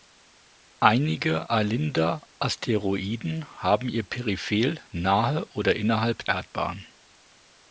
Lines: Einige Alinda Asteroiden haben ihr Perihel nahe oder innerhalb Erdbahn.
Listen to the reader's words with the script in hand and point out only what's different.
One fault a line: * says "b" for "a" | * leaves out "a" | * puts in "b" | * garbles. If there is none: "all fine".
all fine